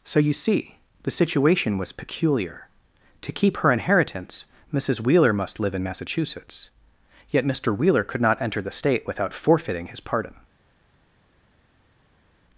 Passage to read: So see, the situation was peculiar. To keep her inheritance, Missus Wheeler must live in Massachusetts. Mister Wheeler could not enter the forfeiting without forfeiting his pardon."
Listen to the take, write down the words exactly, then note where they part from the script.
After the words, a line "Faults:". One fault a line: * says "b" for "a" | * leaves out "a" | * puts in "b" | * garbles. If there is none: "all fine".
So you see, the situation was peculiar. To keep her inheritance, Missus Wheeler must live in Massachusetts. Yet Mister Wheeler could not enter the state without forfeiting his pardon."
Faults:
* puts in "you"
* puts in "Yet"
* says "state" for "forfeiting"